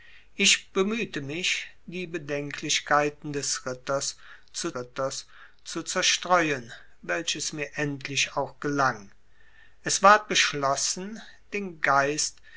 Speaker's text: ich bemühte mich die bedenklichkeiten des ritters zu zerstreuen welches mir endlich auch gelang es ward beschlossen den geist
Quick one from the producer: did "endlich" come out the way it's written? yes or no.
yes